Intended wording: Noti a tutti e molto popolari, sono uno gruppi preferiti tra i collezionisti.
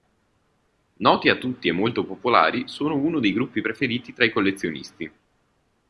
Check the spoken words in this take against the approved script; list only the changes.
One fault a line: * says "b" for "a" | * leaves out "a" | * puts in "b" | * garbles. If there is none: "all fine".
* puts in "dei"